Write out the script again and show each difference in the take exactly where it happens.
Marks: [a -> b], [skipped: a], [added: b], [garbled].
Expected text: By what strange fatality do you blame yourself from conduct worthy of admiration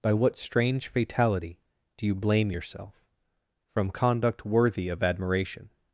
By what strange fatality do you blame yourself from conduct worthy of admiration